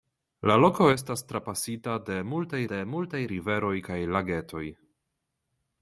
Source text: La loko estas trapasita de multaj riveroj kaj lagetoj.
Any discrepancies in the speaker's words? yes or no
yes